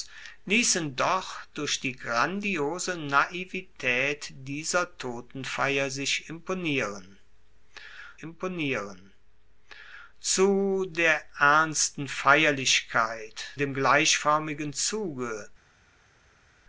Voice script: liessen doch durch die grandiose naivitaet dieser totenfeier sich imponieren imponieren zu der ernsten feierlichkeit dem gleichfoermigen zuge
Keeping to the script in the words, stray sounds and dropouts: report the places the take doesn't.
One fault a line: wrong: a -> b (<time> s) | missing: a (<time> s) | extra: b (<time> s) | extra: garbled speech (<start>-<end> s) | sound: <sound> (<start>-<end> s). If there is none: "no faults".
no faults